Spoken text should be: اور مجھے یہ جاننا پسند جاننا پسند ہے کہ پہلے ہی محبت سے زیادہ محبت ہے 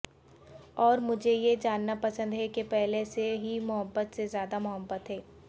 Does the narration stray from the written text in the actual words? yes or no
yes